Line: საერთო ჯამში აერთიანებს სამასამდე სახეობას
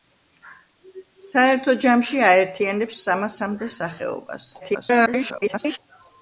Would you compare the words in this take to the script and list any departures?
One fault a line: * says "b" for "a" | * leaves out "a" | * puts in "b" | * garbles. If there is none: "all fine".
* garbles